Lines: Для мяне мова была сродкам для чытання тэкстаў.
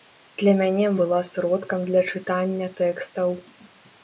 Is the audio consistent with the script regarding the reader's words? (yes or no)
no